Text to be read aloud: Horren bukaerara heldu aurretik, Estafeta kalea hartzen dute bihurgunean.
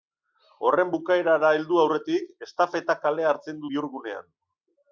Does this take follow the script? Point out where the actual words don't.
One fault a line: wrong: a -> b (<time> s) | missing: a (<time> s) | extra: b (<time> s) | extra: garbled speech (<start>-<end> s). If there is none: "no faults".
missing: dute (3.6 s)